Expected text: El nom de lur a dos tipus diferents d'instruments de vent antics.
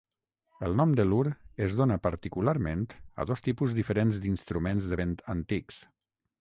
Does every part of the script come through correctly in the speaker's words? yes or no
no